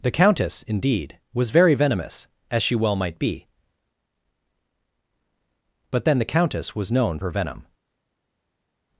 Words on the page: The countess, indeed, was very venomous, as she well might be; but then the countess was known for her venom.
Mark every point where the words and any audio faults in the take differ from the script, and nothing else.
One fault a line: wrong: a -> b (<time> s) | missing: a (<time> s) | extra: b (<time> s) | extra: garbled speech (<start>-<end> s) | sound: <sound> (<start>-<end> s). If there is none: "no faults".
missing: for (7.2 s)